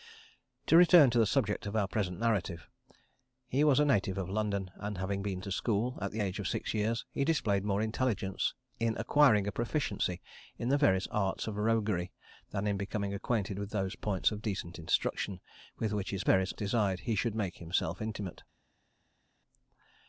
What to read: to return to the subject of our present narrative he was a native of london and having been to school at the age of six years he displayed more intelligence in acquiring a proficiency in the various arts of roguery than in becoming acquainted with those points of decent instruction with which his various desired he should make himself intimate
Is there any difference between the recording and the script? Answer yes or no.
no